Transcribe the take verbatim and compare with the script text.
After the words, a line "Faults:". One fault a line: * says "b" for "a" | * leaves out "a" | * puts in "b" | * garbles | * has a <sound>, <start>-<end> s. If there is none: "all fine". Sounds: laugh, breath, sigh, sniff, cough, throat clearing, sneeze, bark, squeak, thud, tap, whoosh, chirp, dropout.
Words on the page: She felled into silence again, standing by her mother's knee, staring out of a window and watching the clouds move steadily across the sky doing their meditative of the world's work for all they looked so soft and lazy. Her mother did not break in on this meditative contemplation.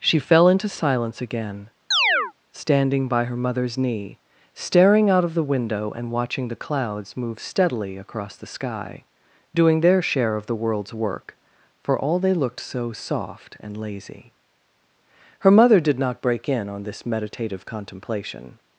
She fell into silence again, standing by her mother's knee, staring out of the window and watching the clouds move steadily across the sky doing their share of the world's work for all they looked so soft and lazy. Her mother did not break in on this meditative contemplation.
Faults:
* says "fell" for "felled"
* has a chirp, 1.9-2.3 s
* says "the" for "a"
* says "share" for "meditative"